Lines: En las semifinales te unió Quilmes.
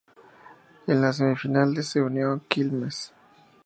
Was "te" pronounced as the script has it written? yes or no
no